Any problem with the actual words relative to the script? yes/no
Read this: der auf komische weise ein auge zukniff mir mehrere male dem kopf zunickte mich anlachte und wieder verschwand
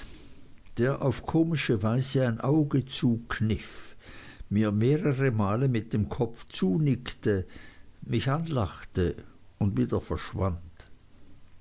yes